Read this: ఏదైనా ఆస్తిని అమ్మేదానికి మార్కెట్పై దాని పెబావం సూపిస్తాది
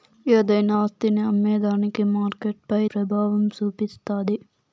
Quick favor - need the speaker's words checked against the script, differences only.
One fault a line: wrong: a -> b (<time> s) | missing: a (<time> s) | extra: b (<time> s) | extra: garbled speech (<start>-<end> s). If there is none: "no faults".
missing: దాని (2.8 s)